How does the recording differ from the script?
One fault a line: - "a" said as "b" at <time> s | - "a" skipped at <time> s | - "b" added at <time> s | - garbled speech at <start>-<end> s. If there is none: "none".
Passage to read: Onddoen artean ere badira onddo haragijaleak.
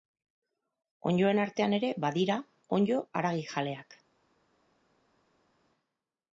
none